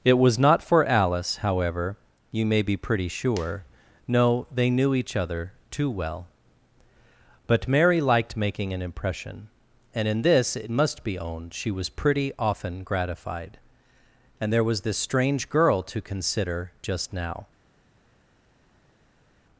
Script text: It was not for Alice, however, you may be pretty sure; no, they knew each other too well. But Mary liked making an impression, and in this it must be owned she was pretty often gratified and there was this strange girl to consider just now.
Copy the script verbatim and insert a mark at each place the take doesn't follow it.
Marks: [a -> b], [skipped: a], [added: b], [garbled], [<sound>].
It was not for Alice, however, you may be pretty sure; no, they knew each other too well. But Mary liked making an impression, and in this it must be owned she was pretty often gratified and there was this strange girl to consider just now.